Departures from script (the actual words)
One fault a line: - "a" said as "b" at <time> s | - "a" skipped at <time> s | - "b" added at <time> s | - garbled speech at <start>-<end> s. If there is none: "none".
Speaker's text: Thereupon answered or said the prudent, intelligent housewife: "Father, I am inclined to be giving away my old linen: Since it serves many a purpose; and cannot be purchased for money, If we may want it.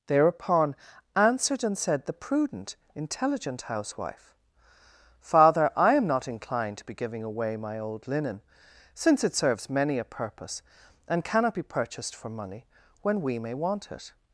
- "or" said as "and" at 1.6 s
- "not" added at 6.1 s
- "If" said as "When" at 13.0 s